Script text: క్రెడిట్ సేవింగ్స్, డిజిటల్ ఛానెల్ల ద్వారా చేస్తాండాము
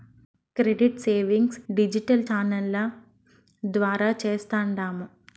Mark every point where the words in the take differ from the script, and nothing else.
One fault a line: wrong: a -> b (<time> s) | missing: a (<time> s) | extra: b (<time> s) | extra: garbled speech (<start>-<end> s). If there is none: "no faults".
no faults